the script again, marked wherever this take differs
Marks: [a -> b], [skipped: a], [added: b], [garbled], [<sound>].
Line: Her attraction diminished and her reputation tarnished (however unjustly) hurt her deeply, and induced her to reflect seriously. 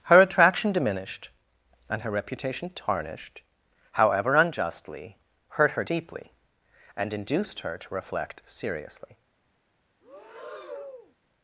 Her attraction diminished and her reputation tarnished (however unjustly) hurt her deeply, and induced her to reflect seriously. [breath]